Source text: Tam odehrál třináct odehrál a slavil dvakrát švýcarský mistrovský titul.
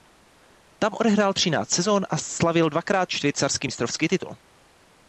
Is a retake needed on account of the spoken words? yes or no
yes